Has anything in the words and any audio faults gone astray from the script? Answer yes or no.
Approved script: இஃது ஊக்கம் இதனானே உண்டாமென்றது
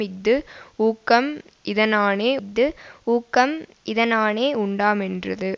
yes